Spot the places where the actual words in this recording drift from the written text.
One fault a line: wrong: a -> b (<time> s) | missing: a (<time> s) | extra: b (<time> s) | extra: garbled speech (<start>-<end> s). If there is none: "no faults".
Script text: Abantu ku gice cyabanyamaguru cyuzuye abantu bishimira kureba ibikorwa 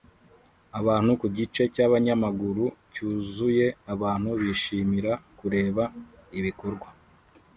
no faults